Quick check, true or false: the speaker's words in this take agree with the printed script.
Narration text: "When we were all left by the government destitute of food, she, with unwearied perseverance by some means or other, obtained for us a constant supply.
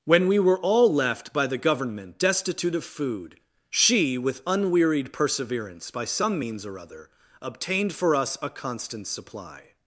true